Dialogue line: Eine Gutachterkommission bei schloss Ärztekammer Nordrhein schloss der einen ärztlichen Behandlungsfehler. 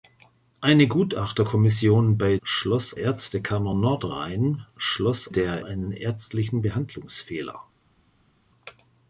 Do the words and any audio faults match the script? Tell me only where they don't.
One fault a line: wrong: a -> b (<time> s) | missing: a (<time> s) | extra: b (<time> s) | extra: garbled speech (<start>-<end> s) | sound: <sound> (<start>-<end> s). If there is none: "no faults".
no faults